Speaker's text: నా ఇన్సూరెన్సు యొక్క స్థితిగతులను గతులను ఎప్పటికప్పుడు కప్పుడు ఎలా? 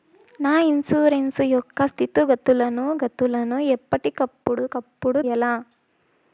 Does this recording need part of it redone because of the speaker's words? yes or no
no